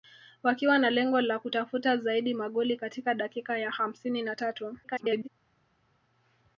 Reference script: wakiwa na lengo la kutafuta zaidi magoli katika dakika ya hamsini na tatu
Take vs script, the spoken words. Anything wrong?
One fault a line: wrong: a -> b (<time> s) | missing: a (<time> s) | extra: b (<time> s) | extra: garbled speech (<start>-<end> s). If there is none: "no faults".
extra: garbled speech (4.8-5.3 s)